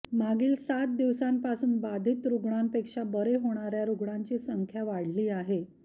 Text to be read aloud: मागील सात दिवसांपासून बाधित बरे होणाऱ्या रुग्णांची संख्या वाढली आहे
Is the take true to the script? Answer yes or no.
no